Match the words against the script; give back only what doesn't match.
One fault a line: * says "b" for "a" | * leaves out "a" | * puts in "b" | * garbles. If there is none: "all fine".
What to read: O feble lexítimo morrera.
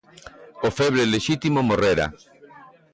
all fine